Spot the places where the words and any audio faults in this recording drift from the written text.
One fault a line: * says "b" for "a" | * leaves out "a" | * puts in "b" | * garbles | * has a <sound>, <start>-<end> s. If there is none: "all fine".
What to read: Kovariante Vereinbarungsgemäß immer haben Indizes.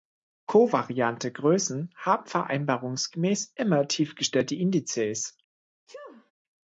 * puts in "Größen haben"
* says "tiefgestellte" for "haben"
* has a sneeze, 5.9-6.3 s